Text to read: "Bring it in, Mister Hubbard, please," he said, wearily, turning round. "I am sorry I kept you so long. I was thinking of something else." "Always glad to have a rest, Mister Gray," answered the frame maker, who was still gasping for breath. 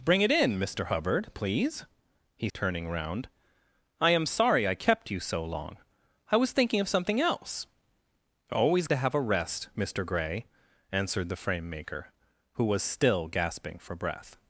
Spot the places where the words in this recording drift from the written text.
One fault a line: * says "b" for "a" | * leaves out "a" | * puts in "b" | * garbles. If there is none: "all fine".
* leaves out "said wearily"
* leaves out "glad"